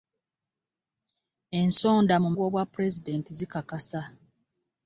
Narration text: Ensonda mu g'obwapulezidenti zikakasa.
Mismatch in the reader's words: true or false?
false